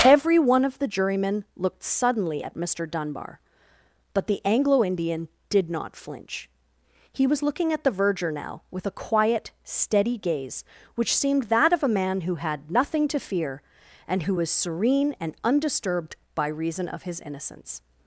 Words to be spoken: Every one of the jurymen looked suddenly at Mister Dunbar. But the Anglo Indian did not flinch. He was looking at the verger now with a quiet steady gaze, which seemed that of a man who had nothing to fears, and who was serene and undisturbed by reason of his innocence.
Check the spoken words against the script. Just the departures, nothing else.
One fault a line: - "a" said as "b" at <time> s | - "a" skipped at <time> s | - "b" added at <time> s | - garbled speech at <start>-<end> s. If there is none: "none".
- "fears" said as "fear" at 13.2 s